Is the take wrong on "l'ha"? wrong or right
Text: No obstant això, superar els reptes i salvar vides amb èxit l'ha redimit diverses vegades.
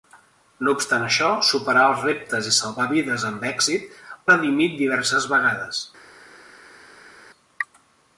wrong